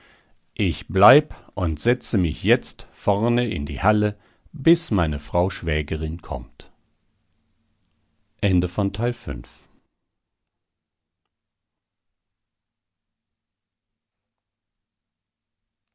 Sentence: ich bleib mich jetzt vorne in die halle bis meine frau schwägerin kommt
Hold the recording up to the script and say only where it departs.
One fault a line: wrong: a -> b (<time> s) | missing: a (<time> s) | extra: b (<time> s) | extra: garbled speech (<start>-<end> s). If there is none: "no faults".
extra: und setze (1.5 s)